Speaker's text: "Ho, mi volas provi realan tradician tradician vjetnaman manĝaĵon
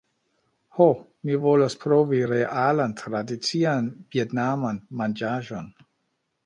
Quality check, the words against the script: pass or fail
fail